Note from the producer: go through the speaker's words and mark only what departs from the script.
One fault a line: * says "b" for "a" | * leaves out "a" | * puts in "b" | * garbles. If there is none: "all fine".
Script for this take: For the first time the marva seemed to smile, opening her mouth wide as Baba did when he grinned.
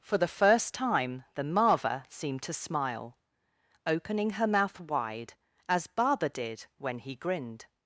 all fine